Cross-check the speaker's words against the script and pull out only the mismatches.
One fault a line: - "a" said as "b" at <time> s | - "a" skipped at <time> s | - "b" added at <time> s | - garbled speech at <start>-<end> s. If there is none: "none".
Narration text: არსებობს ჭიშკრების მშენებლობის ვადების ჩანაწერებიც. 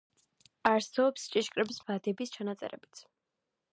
- "მშენებლობის" skipped at 1.8 s